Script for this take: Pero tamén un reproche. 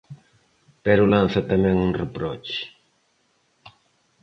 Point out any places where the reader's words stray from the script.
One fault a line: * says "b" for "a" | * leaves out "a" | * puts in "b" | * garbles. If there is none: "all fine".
* puts in "lanza"